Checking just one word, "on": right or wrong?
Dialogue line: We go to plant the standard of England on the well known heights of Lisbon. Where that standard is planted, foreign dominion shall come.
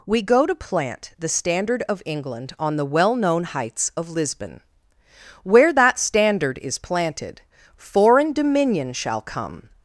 right